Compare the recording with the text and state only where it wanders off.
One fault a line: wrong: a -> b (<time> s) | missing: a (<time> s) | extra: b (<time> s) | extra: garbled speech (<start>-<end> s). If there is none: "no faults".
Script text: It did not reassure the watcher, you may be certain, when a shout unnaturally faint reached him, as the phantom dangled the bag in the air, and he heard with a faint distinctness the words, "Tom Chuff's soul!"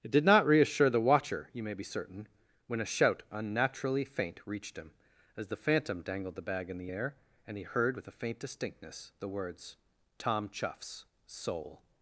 no faults